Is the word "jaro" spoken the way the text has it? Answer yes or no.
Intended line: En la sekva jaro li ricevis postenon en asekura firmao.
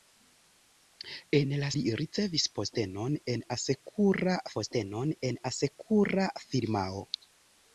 no